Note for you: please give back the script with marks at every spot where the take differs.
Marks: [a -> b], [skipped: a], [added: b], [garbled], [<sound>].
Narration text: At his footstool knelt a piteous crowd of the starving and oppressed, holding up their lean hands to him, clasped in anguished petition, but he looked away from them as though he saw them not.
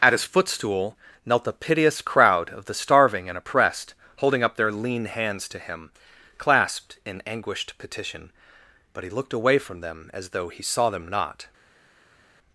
At his footstool knelt a piteous crowd of the starving and oppressed, holding up their lean hands to him, clasped in anguished petition, but he looked away from them as though he saw them not.